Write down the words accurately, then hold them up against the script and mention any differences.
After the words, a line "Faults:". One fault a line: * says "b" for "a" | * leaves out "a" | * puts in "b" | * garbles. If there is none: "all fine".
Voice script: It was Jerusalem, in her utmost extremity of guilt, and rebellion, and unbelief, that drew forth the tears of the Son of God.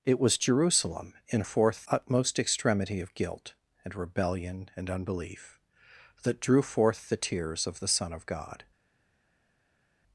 It was Jerusalem, in forth utmost extremity of guilt, and rebellion, and unbelief, that drew forth the tears of the Son of God.
Faults:
* says "forth" for "her"